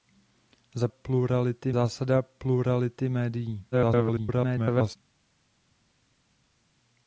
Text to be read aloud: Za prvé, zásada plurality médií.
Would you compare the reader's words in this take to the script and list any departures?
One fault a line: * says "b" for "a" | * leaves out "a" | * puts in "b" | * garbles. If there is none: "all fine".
* says "plurality" for "prvé"
* garbles